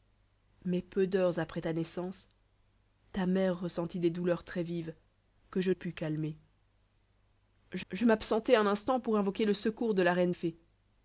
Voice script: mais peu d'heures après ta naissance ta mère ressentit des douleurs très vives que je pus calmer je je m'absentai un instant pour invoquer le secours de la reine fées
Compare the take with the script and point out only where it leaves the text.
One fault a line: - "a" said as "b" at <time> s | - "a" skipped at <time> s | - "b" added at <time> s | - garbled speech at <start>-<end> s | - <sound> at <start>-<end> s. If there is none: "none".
none